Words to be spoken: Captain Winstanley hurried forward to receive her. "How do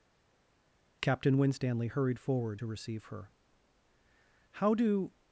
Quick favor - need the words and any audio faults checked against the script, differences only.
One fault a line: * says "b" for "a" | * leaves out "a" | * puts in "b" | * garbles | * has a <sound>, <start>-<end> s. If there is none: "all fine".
all fine